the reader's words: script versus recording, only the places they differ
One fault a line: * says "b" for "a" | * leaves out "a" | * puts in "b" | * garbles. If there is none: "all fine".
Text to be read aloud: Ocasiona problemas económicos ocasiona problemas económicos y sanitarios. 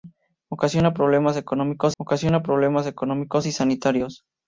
all fine